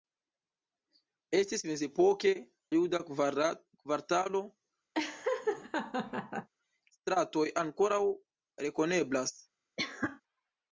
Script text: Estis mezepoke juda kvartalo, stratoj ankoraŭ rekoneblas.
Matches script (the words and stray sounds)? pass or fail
fail